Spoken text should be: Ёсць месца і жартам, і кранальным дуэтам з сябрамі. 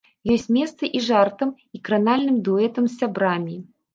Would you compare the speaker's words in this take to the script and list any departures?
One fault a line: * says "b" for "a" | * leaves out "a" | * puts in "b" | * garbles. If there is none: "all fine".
all fine